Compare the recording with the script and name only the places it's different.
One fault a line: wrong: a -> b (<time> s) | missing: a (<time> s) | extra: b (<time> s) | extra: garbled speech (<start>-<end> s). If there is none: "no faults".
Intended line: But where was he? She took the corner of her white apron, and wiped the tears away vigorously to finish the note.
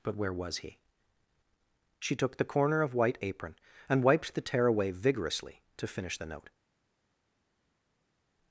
missing: her (2.9 s)
wrong: tears -> tear (4.4 s)